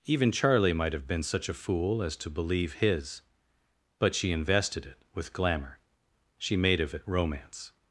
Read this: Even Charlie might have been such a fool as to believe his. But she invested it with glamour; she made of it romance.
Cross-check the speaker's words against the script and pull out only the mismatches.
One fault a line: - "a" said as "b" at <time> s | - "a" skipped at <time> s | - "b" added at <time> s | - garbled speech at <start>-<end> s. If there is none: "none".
none